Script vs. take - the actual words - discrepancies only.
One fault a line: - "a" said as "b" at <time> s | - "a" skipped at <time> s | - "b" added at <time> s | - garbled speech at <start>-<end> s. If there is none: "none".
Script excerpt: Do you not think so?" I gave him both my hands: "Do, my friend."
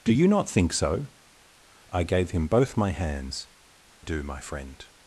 none